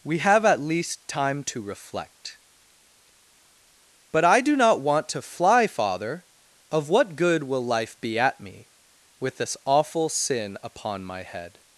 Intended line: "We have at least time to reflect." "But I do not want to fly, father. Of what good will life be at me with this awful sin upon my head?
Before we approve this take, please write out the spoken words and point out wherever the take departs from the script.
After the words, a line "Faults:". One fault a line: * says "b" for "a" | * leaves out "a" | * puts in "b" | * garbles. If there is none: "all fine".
"We have at least time to reflect." "But I do not want to fly, father. Of what good will life be at me with this awful sin upon my head?
Faults:
all fine